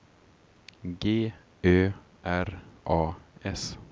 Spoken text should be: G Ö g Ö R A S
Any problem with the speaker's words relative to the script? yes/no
yes